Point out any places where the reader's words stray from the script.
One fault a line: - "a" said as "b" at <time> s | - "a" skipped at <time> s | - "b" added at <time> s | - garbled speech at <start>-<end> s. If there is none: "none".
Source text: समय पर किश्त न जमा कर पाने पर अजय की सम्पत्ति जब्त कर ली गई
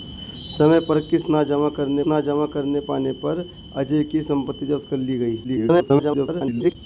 - "न जमा कर" added at 2.1 s
- garbled speech at 5.4-6.8 s